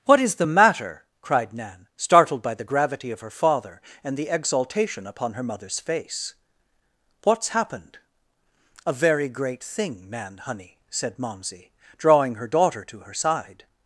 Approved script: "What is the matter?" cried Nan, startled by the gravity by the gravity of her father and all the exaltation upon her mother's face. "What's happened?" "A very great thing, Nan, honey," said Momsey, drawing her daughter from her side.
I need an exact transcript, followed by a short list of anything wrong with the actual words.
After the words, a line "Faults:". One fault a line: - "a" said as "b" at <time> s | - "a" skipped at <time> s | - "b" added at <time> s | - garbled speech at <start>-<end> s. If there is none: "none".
"What is the matter?" cried Nan, startled by the gravity of her father and the exaltation upon her mother's face. "What's happened?" "A very great thing, Nan, honey," said Momsey, drawing her daughter to her side.
Faults:
- "by the gravity" skipped at 3.1 s
- "all" skipped at 4.2 s
- "from" said as "to" at 12.8 s